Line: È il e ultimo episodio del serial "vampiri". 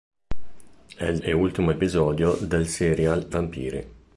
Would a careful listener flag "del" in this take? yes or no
no